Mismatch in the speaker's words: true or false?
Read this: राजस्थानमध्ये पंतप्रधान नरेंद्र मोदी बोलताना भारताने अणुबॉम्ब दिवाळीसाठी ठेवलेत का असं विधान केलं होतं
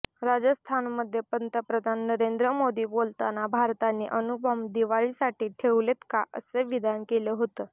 false